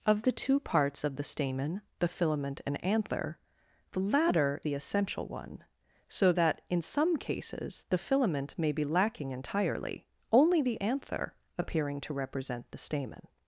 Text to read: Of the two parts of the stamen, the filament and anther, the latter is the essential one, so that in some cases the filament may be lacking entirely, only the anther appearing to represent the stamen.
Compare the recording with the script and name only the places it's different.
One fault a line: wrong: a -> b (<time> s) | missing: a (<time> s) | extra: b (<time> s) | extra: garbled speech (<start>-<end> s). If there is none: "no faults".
missing: is (4.6 s)